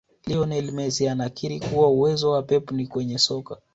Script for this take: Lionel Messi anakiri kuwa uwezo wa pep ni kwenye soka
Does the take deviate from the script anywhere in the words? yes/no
no